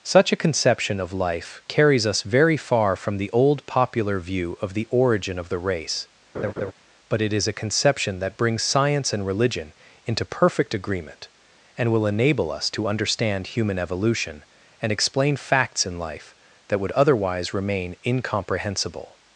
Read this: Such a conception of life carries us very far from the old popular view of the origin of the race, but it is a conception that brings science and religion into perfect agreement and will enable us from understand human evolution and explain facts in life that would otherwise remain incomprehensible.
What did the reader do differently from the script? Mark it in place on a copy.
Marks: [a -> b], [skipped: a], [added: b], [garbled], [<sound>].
Such a conception of life carries us very far from the old popular view of the origin of the race, [laugh] but it is a conception that brings science and religion into perfect agreement and will enable us [from -> to] understand human evolution and explain facts in life that would otherwise remain incomprehensible.